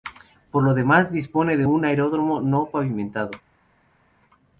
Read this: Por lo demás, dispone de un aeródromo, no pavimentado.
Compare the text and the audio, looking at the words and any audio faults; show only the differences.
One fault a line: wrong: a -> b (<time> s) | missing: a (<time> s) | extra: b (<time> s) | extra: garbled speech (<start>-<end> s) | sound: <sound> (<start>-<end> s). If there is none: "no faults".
no faults